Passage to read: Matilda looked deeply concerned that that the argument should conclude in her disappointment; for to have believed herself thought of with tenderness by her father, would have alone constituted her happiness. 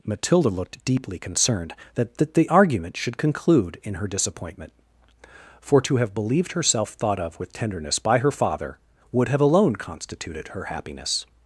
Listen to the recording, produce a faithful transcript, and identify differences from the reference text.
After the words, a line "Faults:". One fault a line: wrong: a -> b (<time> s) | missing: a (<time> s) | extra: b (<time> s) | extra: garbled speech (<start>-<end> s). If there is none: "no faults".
Matilda looked deeply concerned that that the argument should conclude in her disappointment; for to have believed herself thought of with tenderness by her father, would have alone constituted her happiness.
Faults:
no faults